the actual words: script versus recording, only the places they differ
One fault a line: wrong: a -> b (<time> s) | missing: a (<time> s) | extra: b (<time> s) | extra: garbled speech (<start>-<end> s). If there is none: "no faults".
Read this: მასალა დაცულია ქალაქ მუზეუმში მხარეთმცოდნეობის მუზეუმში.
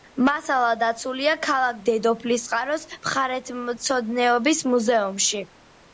wrong: მუზეუმში -> დედოფლისწყაროს (1.9 s)